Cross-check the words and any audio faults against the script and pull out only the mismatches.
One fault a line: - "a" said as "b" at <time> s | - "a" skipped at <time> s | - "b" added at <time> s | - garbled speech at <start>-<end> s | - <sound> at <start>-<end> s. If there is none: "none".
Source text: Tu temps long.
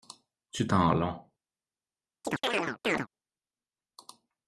- chirp at 2.2-3.1 s